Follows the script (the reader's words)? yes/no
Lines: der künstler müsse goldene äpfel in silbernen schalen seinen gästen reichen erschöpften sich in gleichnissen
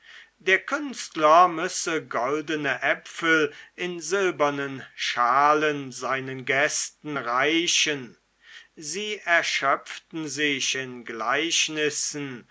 no